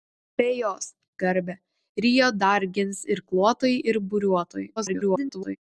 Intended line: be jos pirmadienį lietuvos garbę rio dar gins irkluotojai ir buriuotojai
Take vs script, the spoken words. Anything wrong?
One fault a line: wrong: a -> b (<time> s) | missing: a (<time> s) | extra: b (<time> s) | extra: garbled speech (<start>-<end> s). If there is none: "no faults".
missing: pirmadienį lietuvos (0.8 s)
extra: garbled speech (4.8-5.6 s)